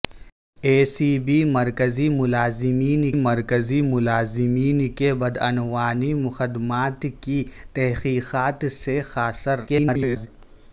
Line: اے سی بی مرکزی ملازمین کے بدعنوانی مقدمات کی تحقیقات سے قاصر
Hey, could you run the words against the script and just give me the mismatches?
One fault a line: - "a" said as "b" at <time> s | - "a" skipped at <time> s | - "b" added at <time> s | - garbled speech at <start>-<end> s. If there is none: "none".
- "مرکزی ملازمین" added at 3.2 s
- garbled speech at 9.7-10.3 s